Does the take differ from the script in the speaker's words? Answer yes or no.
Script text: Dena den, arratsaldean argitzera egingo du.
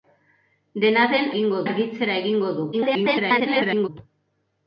yes